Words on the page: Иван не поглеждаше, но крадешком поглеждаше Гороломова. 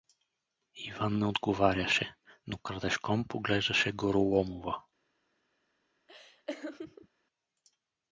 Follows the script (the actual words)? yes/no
no